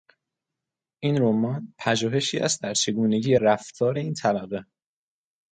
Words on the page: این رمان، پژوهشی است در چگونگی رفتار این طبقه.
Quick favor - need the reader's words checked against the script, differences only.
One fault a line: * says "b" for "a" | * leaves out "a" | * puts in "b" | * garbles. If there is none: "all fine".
all fine